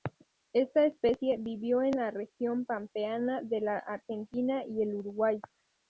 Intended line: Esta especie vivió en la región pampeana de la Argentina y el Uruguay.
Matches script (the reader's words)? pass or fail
pass